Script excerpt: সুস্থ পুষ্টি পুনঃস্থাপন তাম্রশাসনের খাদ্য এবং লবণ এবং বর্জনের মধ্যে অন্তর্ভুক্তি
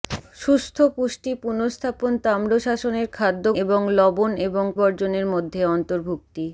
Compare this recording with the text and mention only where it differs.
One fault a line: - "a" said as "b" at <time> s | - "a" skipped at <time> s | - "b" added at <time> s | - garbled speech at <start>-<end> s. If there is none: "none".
none